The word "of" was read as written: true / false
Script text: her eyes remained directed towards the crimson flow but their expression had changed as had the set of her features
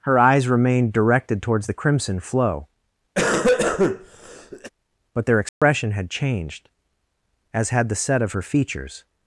true